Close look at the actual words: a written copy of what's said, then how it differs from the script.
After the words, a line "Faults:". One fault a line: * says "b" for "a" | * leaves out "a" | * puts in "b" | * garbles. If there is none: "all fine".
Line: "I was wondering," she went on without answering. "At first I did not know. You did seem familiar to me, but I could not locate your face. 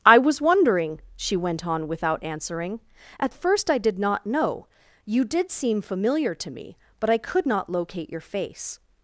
"I was wondering," she went on without answering. "At first I did not know. You did seem familiar to me, but I could not locate your face.
Faults:
all fine